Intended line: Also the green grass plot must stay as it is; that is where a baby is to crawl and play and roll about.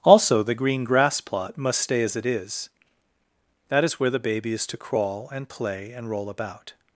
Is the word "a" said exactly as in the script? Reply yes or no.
no